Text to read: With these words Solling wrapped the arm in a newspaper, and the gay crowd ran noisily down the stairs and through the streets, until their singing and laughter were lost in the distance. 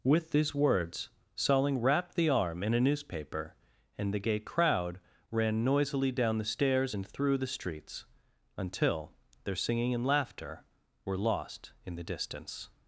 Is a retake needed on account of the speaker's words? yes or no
no